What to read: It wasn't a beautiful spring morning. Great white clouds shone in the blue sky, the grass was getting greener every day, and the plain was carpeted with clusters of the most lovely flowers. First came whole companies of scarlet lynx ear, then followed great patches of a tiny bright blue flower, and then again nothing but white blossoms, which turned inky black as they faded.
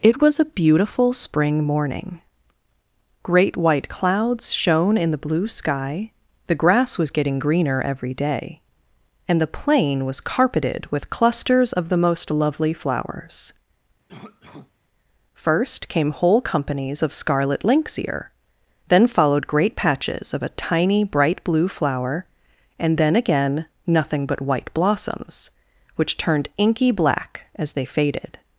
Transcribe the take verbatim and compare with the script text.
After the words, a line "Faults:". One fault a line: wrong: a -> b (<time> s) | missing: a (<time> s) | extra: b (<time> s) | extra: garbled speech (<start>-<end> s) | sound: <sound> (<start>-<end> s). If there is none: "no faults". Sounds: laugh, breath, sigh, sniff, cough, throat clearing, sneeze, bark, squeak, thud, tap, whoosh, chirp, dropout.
It was a beautiful spring morning. Great white clouds shone in the blue sky, the grass was getting greener every day, and the plain was carpeted with clusters of the most lovely flowers. First came whole companies of scarlet lynx ear, then followed great patches of a tiny bright blue flower, and then again nothing but white blossoms, which turned inky black as they faded.
Faults:
wrong: wasn't -> was (0.2 s)
sound: cough (14.1-14.7 s)